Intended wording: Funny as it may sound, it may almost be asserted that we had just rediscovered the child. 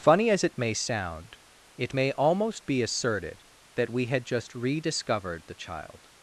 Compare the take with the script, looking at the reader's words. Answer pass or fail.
pass